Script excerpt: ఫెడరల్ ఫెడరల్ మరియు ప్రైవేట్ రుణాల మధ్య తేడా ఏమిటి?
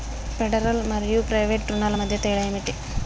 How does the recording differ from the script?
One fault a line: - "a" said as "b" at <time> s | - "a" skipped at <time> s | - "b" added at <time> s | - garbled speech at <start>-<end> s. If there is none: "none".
- "ఫెడరల్" skipped at 0.8 s